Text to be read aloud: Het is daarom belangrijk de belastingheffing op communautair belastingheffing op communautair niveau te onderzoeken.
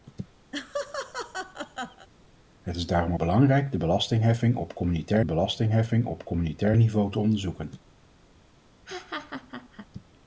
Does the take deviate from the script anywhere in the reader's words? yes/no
no